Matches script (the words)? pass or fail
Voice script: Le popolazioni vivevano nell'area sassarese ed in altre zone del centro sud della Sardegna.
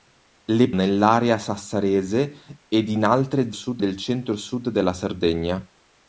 fail